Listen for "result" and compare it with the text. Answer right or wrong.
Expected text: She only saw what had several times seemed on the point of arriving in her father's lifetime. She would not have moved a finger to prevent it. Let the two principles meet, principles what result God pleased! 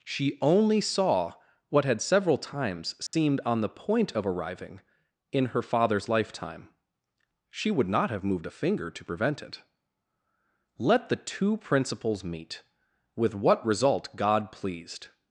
right